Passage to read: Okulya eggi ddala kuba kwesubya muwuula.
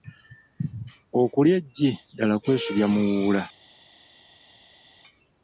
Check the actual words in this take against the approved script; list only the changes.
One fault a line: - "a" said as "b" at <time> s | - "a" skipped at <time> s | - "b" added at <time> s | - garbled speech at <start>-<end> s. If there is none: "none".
- "kuba" skipped at 2.4 s